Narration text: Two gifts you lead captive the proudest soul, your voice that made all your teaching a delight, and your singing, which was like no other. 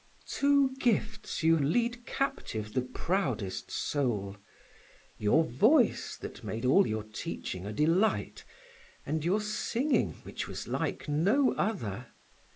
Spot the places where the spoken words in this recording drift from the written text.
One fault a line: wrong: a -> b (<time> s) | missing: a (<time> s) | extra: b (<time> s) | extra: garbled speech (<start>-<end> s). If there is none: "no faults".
no faults